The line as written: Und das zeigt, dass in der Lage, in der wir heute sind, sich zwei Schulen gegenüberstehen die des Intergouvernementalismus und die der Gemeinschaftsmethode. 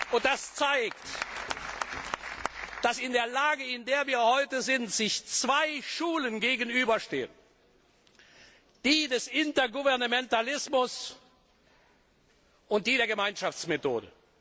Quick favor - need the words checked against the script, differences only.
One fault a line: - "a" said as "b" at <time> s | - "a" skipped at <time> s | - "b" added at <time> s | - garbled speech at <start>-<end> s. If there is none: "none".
none